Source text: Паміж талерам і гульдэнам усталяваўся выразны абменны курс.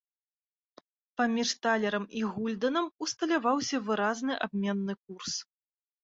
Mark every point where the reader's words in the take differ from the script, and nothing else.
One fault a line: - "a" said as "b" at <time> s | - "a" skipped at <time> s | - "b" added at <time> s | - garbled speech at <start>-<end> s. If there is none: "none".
none